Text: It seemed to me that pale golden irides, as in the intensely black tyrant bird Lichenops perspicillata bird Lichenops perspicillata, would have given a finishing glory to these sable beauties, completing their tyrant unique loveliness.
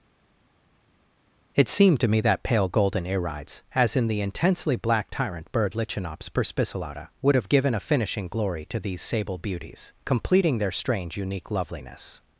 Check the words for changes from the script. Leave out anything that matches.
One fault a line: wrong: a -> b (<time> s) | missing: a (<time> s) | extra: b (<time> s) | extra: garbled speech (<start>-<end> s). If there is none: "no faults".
missing: bird Lichenops perspicillata (7.1 s)
wrong: tyrant -> strange (10.7 s)